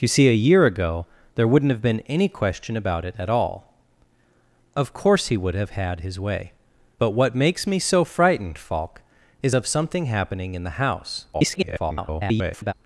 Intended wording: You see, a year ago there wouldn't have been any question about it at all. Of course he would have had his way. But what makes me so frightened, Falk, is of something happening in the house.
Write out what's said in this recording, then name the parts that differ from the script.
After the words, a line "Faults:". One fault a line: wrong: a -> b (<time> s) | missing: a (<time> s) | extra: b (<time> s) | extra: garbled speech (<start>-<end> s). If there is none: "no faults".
You see, a year ago there wouldn't have been any question about it at all. Of course he would have had his way. But what makes me so frightened, Falk, is of something happening in the house. [garbled]
Faults:
extra: garbled speech (11.3-12.7 s)